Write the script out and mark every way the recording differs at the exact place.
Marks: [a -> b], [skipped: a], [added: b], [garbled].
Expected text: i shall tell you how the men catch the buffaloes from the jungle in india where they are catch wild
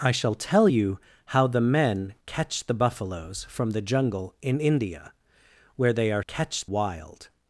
i shall tell you how the men catch the buffaloes from the jungle in india where they are catch wild